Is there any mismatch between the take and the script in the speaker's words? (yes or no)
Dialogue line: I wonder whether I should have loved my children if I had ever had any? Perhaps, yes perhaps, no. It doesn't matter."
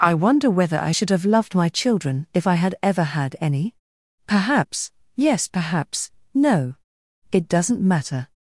no